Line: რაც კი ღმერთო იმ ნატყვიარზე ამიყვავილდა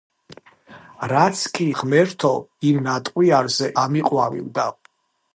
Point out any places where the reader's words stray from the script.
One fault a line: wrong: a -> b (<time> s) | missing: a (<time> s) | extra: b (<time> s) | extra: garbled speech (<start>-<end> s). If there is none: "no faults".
no faults